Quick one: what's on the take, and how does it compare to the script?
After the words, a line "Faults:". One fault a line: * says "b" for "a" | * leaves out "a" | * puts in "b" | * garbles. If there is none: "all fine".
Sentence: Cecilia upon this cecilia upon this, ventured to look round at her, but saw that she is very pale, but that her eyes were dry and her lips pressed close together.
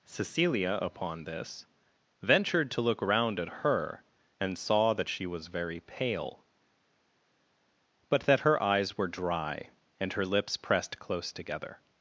Cecilia upon this, ventured to look round at her, and saw that she was very pale, but that her eyes were dry and her lips pressed close together.
Faults:
* leaves out "cecilia upon this"
* says "and" for "but"
* says "was" for "is"